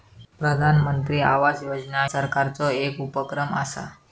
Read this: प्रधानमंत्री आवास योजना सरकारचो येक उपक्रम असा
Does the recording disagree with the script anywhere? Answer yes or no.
no